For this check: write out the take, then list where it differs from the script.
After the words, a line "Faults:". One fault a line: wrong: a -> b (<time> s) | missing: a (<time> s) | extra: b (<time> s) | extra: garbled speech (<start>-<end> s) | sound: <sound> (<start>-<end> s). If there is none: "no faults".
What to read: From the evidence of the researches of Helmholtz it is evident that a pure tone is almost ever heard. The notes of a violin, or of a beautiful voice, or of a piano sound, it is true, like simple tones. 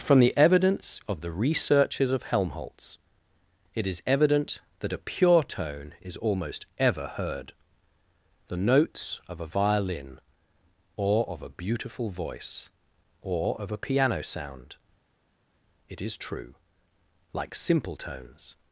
From the evidence of the researches of Helmholtz it is evident that a pure tone is almost ever heard. The notes of a violin, or of a beautiful voice, or of a piano sound, it is true, like simple tones.
Faults:
no faults